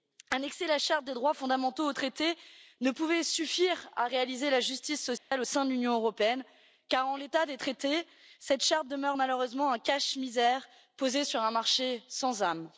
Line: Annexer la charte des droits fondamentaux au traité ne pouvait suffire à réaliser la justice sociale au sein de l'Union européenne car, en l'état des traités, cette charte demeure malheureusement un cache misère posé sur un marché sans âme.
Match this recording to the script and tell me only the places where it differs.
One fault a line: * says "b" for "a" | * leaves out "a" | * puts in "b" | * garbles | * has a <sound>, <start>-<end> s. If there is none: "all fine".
* has a dropout, 5.2-5.3 s